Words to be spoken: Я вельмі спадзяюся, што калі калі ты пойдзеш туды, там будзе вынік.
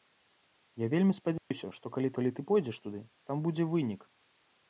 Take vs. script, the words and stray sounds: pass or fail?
fail